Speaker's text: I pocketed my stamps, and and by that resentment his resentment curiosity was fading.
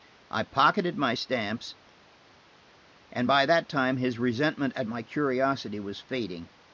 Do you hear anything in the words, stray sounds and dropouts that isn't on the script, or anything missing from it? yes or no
yes